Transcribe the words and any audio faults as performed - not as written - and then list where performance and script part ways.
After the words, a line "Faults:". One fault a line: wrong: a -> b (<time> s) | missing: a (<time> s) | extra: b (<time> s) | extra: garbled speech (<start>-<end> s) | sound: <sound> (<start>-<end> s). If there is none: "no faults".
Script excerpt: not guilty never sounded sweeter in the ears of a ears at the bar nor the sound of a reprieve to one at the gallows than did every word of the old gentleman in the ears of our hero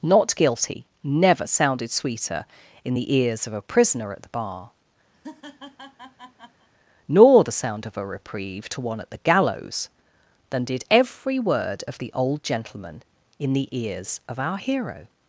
not guilty never sounded sweeter in the ears of a prisoner at the bar nor the sound of a reprieve to one at the gallows than did every word of the old gentleman in the ears of our hero
Faults:
wrong: ears -> prisoner (3.6 s)
sound: laugh (5.1-6.7 s)